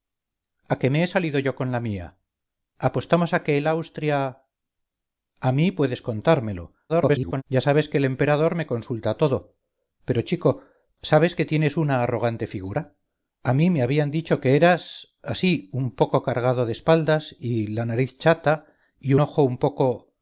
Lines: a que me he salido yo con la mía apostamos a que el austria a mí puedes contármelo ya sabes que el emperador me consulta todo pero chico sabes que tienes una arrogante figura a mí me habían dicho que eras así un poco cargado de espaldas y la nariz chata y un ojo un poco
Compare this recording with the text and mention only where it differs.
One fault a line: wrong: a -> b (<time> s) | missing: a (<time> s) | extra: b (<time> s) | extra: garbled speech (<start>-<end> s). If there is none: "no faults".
extra: garbled speech (6.9-7.4 s)
missing: un (19.1 s)